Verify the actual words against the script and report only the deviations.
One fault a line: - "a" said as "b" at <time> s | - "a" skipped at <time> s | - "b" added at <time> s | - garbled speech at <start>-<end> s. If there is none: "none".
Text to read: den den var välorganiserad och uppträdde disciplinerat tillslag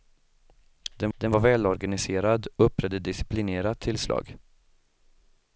none